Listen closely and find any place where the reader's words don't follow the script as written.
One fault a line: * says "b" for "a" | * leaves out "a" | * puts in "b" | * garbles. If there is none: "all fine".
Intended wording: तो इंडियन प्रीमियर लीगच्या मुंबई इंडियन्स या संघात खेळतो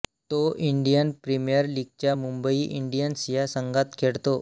all fine